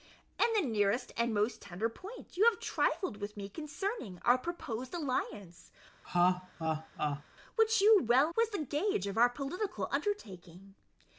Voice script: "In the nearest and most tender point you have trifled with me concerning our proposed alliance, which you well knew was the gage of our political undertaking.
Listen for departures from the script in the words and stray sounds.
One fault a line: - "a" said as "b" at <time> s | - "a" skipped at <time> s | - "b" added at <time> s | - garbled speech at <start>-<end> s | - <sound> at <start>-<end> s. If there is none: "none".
- laugh at 6.0-7.2 s
- "knew" skipped at 8.3 s